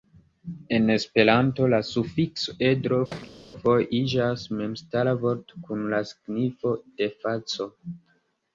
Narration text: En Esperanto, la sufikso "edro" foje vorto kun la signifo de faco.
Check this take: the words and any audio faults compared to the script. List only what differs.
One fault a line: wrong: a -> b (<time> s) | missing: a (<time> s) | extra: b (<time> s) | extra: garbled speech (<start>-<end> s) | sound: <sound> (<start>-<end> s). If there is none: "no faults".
sound: thud (3.1-3.4 s)
extra: iĝas memstara (4.0 s)